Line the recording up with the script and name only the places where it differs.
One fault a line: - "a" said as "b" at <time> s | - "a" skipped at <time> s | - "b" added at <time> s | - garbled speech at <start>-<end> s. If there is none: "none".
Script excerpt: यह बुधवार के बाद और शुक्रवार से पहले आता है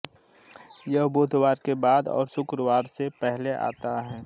none